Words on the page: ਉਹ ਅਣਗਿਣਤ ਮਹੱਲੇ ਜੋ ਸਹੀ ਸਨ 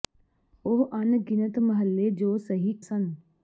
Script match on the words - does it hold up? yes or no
yes